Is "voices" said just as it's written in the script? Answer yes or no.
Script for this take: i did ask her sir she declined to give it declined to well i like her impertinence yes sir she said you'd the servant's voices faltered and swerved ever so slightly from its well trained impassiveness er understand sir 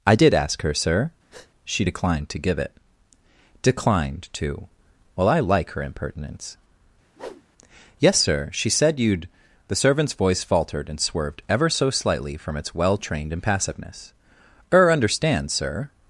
no